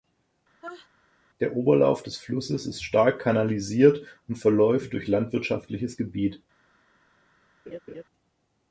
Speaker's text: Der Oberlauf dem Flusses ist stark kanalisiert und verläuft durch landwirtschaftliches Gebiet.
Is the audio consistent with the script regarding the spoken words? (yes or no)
no